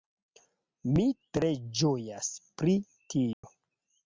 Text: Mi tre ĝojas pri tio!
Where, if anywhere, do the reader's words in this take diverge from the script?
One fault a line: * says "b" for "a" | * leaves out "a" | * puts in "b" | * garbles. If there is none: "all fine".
all fine